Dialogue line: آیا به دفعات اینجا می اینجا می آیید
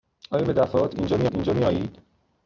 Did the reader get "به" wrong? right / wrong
right